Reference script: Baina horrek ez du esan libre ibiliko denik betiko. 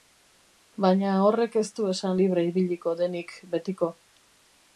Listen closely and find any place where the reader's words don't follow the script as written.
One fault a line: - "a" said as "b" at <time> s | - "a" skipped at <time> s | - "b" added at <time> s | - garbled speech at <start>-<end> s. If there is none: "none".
none